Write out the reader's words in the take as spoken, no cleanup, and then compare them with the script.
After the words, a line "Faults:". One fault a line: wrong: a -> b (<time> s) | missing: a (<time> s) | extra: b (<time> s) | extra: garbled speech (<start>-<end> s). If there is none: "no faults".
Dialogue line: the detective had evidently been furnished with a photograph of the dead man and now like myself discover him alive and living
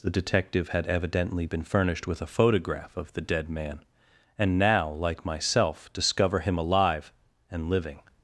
the detective had evidently been furnished with a photograph of the dead man and now like myself discover him alive and living
Faults:
no faults